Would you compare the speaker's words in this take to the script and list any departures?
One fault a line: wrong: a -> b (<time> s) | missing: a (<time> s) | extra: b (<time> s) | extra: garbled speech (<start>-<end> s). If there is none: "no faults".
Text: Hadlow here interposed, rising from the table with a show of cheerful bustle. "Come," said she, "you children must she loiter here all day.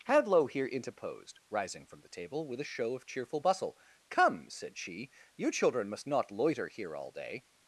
wrong: she -> not (6.1 s)